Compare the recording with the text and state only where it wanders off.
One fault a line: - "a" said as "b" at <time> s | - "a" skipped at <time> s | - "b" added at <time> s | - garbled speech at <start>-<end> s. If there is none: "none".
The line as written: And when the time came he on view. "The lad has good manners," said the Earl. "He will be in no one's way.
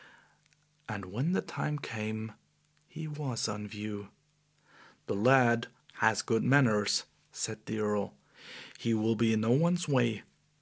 - "was" added at 3.1 s